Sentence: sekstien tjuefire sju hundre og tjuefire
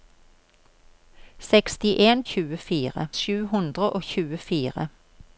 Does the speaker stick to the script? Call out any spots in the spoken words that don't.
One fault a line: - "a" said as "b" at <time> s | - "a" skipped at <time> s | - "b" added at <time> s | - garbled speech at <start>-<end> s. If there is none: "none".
none